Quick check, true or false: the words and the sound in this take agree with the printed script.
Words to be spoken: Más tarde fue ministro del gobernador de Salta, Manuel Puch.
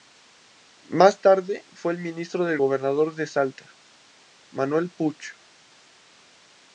true